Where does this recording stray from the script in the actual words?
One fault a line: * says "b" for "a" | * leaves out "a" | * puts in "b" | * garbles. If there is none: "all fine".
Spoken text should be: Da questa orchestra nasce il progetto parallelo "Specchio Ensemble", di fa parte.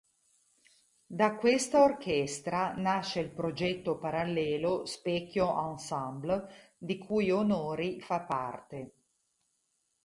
* puts in "cui Onori"